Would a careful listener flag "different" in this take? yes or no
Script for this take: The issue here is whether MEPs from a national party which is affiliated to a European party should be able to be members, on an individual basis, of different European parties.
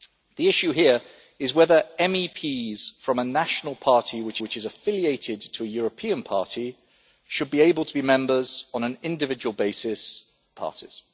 yes